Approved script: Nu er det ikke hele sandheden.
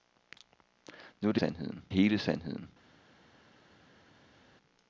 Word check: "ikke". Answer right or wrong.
wrong